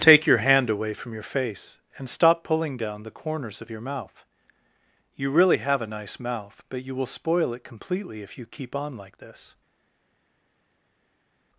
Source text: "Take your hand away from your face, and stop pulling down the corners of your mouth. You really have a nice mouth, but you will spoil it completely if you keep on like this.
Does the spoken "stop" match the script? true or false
true